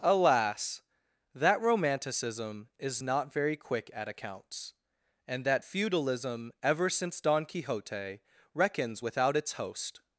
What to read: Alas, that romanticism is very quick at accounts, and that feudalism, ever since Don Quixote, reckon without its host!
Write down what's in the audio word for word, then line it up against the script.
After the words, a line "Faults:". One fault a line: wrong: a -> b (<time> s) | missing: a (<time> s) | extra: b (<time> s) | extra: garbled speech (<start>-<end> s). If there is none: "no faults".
Alas, that romanticism is not very quick at accounts, and that feudalism, ever since Don Quixote, reckons without its host!
Faults:
extra: not (3.0 s)
wrong: reckon -> reckons (8.5 s)